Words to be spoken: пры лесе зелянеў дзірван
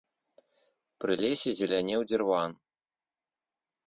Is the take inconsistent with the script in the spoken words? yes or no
no